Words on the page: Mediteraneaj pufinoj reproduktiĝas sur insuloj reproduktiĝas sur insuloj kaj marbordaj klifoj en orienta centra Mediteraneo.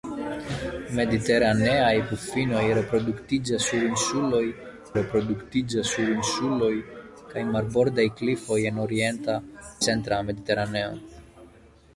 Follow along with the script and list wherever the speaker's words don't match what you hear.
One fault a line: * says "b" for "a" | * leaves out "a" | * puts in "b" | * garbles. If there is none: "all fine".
all fine